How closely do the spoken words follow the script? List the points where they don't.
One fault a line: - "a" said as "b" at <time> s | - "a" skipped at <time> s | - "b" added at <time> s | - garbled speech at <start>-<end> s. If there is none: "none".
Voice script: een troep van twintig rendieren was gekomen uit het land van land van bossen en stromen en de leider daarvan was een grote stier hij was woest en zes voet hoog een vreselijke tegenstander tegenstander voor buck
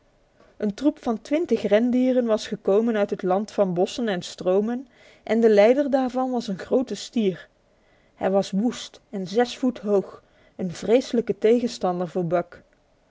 - "land van" skipped at 3.7 s
- "tegenstander" skipped at 12.1 s